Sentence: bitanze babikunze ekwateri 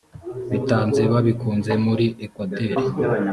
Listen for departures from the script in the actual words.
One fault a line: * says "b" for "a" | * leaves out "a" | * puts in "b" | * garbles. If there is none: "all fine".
* puts in "muri"